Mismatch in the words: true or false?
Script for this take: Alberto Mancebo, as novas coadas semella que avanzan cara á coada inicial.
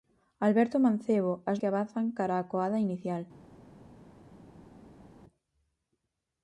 true